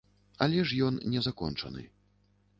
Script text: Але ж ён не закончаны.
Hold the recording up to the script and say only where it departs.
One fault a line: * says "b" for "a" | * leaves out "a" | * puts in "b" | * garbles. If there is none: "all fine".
all fine